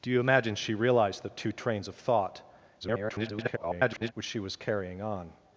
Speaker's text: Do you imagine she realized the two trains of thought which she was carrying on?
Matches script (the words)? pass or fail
fail